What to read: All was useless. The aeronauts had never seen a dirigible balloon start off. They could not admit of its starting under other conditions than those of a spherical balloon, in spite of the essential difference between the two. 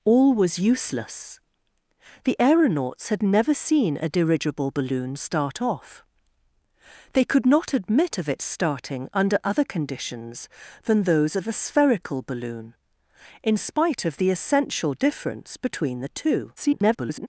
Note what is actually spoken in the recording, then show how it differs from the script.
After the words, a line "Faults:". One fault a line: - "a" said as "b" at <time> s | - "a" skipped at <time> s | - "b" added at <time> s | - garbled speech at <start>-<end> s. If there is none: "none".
All was useless. The aeronauts had never seen a dirigible balloon start off. They could not admit of its starting under other conditions than those of a spherical balloon, in spite of the essential difference between the two. [garbled]
Faults:
- garbled speech at 16.6-17.3 s